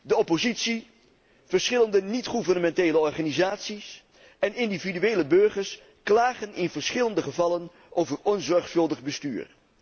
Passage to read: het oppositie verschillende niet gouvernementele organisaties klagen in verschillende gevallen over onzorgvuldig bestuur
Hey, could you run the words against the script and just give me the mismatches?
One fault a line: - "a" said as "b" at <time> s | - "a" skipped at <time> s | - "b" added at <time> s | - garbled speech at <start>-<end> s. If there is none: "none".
- "het" said as "de" at 0.0 s
- "en individuele burgers" added at 4.4 s